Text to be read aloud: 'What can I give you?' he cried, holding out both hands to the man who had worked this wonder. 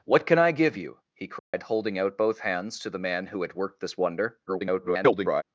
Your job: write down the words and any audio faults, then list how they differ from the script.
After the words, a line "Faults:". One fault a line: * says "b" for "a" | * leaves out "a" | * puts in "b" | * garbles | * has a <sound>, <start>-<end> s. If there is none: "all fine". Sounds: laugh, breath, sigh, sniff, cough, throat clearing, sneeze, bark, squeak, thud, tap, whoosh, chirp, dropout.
'What can I give you?' he cried, holding out both hands to the man who had worked this wonder. [garbled]
Faults:
* has a dropout, 1.4-1.5 s
* garbles